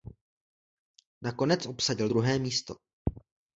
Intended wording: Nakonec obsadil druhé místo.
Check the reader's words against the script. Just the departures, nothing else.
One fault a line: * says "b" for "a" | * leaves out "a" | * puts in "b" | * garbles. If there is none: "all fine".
all fine